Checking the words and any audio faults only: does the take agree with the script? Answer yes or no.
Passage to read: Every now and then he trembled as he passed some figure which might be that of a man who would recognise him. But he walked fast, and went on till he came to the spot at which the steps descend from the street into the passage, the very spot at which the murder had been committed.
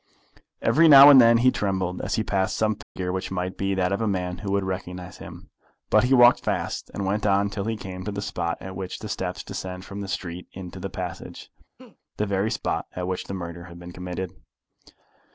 no